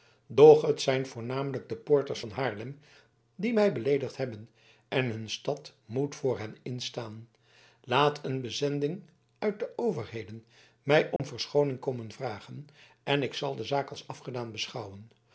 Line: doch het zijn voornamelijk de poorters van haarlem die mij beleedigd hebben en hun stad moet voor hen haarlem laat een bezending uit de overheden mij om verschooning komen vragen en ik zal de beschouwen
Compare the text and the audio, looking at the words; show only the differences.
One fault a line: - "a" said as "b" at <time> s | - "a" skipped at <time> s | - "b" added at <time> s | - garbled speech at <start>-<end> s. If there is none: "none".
- "haarlem" said as "instaan" at 6.6 s
- "zaak als afgedaan" added at 13.6 s